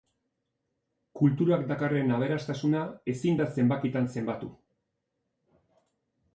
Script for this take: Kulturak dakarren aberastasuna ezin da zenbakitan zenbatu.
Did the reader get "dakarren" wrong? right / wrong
right